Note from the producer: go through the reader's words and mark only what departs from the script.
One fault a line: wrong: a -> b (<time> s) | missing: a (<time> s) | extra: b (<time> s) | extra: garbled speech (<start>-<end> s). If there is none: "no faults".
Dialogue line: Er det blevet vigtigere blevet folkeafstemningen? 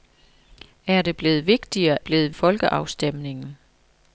no faults